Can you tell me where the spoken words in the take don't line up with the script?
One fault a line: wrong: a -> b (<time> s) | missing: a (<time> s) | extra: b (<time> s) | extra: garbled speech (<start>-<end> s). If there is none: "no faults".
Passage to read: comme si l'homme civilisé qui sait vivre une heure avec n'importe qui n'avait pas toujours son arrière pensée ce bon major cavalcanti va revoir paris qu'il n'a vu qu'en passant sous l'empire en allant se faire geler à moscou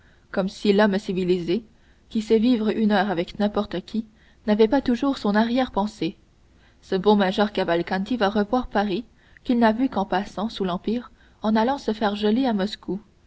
no faults